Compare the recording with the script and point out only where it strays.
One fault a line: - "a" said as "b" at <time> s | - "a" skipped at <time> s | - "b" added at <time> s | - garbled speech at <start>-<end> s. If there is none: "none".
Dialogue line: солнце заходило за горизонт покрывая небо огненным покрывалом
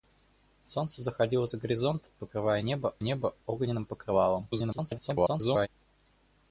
- "небо" added at 3.0 s
- garbled speech at 4.5-5.7 s